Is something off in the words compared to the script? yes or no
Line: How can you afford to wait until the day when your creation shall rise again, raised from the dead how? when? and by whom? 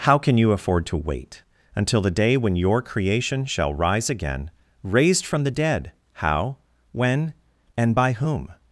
no